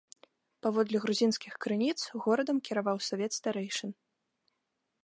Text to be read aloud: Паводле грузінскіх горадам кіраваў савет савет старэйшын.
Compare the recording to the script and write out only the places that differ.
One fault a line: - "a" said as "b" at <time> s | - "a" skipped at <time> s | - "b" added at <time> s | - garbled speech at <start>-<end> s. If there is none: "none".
- "крыніц" added at 1.6 s
- "савет" skipped at 3.3 s